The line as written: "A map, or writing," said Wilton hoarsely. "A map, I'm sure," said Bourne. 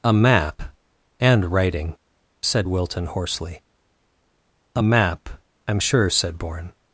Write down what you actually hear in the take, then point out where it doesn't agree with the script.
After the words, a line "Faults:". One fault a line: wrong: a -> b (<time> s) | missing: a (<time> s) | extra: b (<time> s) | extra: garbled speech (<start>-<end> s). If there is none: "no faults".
"A map, and writing," said Wilton hoarsely. "A map, I'm sure," said Bourne.
Faults:
wrong: or -> and (1.2 s)